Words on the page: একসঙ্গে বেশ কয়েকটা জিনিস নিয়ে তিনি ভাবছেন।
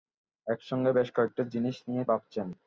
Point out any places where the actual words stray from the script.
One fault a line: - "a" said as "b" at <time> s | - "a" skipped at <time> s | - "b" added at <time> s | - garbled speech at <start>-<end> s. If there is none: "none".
- "তিনি" skipped at 2.0 s